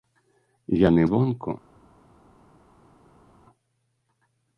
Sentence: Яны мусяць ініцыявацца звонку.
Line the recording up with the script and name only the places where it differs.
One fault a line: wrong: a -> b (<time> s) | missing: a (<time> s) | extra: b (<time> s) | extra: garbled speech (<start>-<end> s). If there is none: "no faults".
missing: мусяць ініцыявацца (1.0 s)